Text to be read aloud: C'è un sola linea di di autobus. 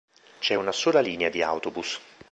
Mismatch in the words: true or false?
true